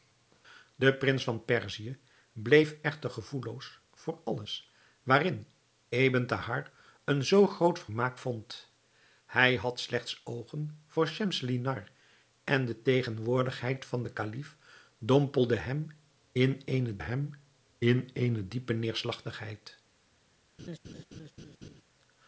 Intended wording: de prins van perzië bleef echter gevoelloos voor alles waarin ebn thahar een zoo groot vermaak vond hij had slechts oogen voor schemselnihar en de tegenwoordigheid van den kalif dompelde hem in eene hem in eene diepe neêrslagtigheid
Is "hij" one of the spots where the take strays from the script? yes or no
no